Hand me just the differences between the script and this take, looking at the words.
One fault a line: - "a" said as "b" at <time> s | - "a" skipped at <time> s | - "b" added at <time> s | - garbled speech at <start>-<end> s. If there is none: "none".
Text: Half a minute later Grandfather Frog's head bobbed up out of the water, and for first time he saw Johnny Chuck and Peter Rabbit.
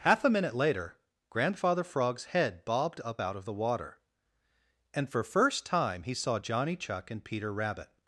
none